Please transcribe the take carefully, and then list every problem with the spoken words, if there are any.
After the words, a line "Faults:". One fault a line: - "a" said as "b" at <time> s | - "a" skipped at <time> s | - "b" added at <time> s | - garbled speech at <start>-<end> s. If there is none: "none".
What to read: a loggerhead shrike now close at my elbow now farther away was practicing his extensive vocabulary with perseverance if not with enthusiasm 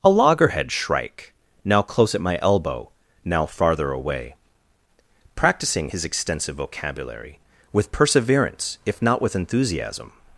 a loggerhead shrike now close at my elbow now farther away practicing his extensive vocabulary with perseverance if not with enthusiasm
Faults:
- "was" skipped at 4.3 s